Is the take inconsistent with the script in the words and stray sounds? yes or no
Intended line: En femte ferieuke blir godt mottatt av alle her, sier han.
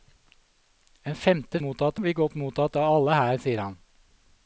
yes